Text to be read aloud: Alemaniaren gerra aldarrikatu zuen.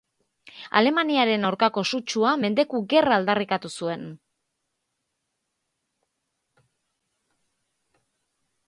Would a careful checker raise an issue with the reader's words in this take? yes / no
yes